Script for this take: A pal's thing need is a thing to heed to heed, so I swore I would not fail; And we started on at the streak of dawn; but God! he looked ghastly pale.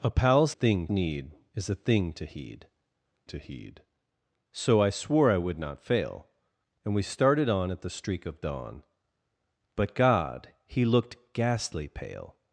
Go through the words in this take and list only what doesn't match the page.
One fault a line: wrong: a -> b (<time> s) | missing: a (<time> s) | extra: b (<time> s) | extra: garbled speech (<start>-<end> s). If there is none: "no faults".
no faults